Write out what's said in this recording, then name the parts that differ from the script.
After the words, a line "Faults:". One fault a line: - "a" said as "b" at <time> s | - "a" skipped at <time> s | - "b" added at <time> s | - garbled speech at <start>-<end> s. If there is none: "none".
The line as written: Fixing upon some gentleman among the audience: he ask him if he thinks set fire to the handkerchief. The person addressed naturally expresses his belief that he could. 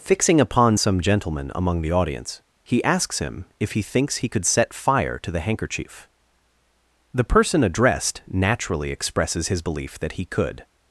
Fixing upon some gentleman among the audience: he asks him if he thinks he could set fire to the handkerchief. The person addressed naturally expresses his belief that he could.
Faults:
- "ask" said as "asks" at 2.8 s
- "he could" added at 4.2 s